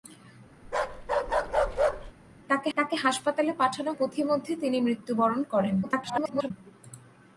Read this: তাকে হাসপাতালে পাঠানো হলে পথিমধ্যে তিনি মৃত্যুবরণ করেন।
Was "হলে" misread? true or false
true